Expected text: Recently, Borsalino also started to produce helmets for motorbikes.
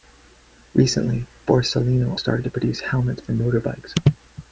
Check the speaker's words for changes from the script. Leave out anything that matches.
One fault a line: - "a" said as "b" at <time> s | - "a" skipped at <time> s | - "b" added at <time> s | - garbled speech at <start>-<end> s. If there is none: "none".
- "also" skipped at 2.2 s